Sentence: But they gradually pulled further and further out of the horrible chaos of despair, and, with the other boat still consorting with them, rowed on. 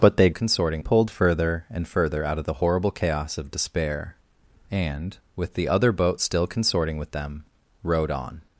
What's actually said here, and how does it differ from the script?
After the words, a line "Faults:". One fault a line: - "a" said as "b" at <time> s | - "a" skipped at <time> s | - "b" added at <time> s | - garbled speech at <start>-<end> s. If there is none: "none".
But they consorting pulled further and further out of the horrible chaos of despair, and, with the other boat still consorting with them, rowed on.
Faults:
- "gradually" said as "consorting" at 0.3 s